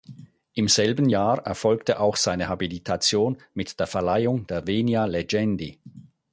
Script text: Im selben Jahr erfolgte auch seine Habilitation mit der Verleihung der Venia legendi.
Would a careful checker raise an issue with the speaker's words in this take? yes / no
no